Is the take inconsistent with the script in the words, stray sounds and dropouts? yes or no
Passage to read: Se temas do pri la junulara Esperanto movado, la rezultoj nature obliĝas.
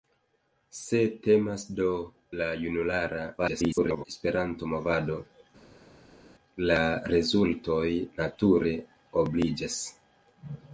yes